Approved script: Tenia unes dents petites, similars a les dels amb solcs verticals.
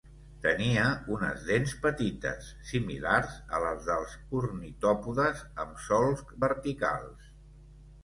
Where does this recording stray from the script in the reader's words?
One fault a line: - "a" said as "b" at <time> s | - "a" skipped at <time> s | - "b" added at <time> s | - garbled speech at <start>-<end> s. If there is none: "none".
- "ornitòpodes" added at 4.4 s